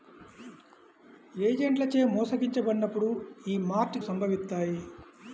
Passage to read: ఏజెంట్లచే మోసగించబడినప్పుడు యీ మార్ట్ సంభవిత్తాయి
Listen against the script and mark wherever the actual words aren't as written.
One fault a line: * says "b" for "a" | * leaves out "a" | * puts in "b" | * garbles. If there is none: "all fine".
all fine